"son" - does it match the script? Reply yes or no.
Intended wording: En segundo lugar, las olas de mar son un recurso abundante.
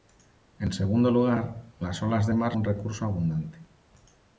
no